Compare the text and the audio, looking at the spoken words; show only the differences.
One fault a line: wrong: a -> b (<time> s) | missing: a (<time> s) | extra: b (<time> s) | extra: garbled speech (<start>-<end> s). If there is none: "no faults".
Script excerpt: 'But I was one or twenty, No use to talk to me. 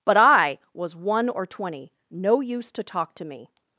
no faults